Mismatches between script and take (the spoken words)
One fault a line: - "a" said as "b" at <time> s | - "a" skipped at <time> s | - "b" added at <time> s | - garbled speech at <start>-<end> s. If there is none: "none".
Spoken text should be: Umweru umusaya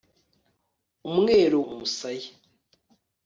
none